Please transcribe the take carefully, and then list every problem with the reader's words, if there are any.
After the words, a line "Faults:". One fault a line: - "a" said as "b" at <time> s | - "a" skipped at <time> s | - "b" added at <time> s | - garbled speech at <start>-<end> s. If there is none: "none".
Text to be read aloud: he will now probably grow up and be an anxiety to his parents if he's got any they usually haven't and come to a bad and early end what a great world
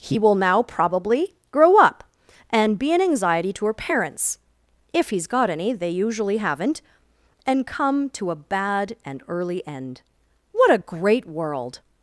he will now probably grow up and be an anxiety to her parents if he's got any they usually haven't and come to a bad and early end what a great world
Faults:
- "his" said as "her" at 3.7 s